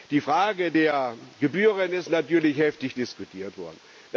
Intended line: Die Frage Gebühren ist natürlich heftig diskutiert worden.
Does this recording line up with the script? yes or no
no